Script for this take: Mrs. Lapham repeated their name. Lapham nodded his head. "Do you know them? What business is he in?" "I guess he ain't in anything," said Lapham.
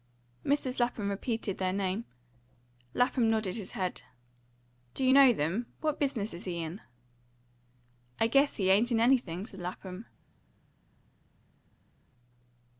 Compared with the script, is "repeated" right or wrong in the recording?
right